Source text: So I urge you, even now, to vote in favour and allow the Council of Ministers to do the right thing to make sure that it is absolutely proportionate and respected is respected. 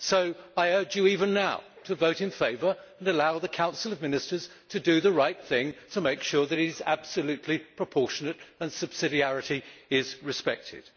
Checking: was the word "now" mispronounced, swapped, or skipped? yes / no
no